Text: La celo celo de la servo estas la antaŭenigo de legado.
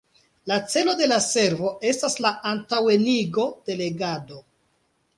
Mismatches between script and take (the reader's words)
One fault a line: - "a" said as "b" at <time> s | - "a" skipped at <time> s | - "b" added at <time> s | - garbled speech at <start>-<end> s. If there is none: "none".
- "celo" skipped at 0.9 s